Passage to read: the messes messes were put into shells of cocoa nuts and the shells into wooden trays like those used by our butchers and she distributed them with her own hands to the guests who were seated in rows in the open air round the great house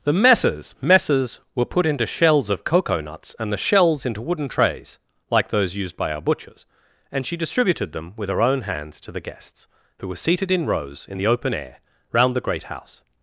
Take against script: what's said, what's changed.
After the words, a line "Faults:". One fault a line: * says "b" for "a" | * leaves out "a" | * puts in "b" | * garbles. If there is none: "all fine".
the messes messes were put into shells of cocoa nuts and the shells into wooden trays like those used by our butchers and she distributed them with her own hands to the guests who were seated in rows in the open air round the great house
Faults:
all fine